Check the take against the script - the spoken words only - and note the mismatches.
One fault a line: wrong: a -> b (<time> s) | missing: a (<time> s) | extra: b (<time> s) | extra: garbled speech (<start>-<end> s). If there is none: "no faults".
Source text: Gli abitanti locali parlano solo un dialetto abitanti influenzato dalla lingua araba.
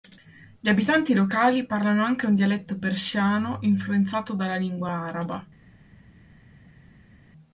wrong: solo -> anche (2.0 s)
wrong: abitanti -> persiano (2.8 s)